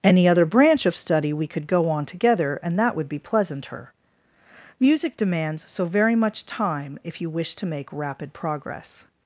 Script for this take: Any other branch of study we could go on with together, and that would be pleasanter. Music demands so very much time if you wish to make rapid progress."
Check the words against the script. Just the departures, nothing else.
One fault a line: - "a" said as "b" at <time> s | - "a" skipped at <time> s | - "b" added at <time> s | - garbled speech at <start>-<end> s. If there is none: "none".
- "with" skipped at 2.0 s